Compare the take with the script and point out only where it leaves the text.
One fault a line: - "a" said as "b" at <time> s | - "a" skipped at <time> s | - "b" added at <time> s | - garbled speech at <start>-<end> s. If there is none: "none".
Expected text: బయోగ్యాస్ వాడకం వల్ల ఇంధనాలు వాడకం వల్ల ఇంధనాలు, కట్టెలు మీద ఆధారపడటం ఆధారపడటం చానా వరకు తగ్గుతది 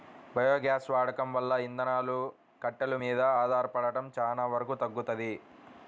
- "వాడకం వల్ల ఇంధనాలు" skipped at 2.2 s
- "ఆధారపడటం" skipped at 4.1 s